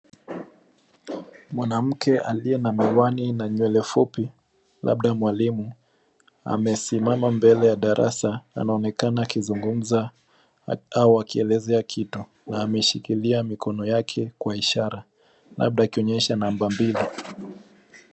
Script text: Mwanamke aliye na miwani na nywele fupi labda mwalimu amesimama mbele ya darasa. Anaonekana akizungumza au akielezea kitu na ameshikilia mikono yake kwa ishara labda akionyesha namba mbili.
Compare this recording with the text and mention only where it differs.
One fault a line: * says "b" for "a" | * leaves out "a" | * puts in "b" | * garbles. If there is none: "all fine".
all fine